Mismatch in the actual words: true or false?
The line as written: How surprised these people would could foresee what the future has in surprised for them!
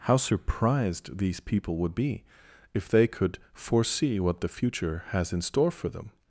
true